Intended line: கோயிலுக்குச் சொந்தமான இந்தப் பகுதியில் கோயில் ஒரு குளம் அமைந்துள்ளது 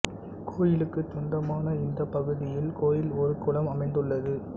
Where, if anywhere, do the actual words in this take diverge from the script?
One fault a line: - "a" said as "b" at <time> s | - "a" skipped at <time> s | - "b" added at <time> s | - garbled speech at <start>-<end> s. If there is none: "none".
none